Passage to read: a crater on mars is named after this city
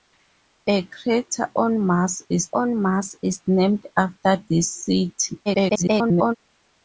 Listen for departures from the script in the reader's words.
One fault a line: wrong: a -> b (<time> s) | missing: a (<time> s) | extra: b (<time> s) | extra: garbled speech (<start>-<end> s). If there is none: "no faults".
extra: on mars is (2.5 s)
extra: garbled speech (5.5-6.4 s)